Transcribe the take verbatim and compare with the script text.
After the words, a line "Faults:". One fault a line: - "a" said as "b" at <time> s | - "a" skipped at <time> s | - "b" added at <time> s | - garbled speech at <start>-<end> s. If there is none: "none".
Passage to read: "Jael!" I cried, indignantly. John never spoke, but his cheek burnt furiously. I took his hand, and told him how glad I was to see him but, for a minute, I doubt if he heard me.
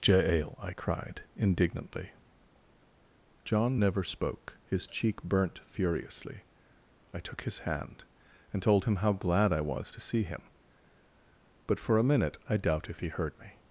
"Jael!" I cried, indignantly. John never spoke, his cheek burnt furiously. I took his hand, and told him how glad I was to see him but, for a minute, I doubt if he heard me.
Faults:
- "but" skipped at 4.6 s